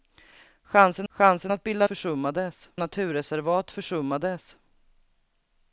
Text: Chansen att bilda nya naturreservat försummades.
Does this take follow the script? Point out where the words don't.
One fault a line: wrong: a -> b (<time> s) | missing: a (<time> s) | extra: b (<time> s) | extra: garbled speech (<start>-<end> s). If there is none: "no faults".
extra: chansen (1.1 s)
wrong: nya -> försummades (1.8 s)